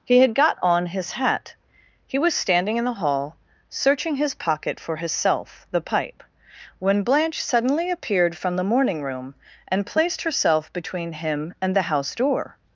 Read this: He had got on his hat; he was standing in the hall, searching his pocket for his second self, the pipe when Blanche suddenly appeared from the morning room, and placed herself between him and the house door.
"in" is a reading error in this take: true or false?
false